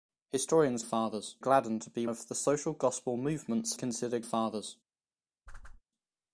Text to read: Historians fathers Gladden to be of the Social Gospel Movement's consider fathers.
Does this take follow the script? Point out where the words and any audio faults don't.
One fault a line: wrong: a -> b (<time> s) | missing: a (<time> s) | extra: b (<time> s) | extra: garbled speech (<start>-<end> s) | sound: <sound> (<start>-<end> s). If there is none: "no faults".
sound: whoosh (5.5-5.8 s)